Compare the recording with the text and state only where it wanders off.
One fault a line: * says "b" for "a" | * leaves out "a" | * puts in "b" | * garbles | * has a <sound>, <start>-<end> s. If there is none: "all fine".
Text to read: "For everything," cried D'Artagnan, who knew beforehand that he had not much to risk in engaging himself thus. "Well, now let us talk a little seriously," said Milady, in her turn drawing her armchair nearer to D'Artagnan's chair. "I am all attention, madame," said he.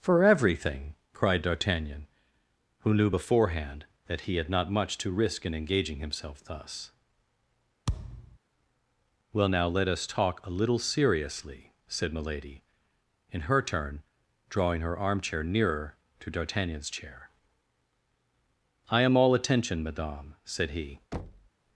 * has a thud, 7.9-8.4 s
* has a thud, 21.1-21.5 s